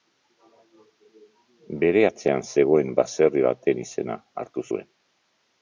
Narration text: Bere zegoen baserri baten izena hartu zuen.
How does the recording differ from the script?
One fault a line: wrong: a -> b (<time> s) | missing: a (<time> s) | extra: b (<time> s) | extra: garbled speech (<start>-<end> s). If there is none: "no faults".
extra: atzean (2.1 s)